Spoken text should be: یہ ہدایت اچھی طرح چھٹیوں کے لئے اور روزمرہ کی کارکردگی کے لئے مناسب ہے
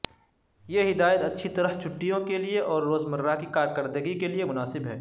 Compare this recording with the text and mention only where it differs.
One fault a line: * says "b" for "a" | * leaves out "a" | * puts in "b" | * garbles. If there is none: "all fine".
all fine